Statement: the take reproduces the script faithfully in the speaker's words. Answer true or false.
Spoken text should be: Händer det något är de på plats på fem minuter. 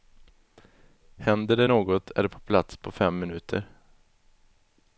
true